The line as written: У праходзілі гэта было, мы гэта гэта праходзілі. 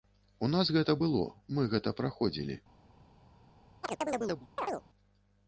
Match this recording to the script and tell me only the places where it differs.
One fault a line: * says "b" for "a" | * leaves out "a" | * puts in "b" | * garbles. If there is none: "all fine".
* says "нас" for "праходзілі"
* leaves out "гэта"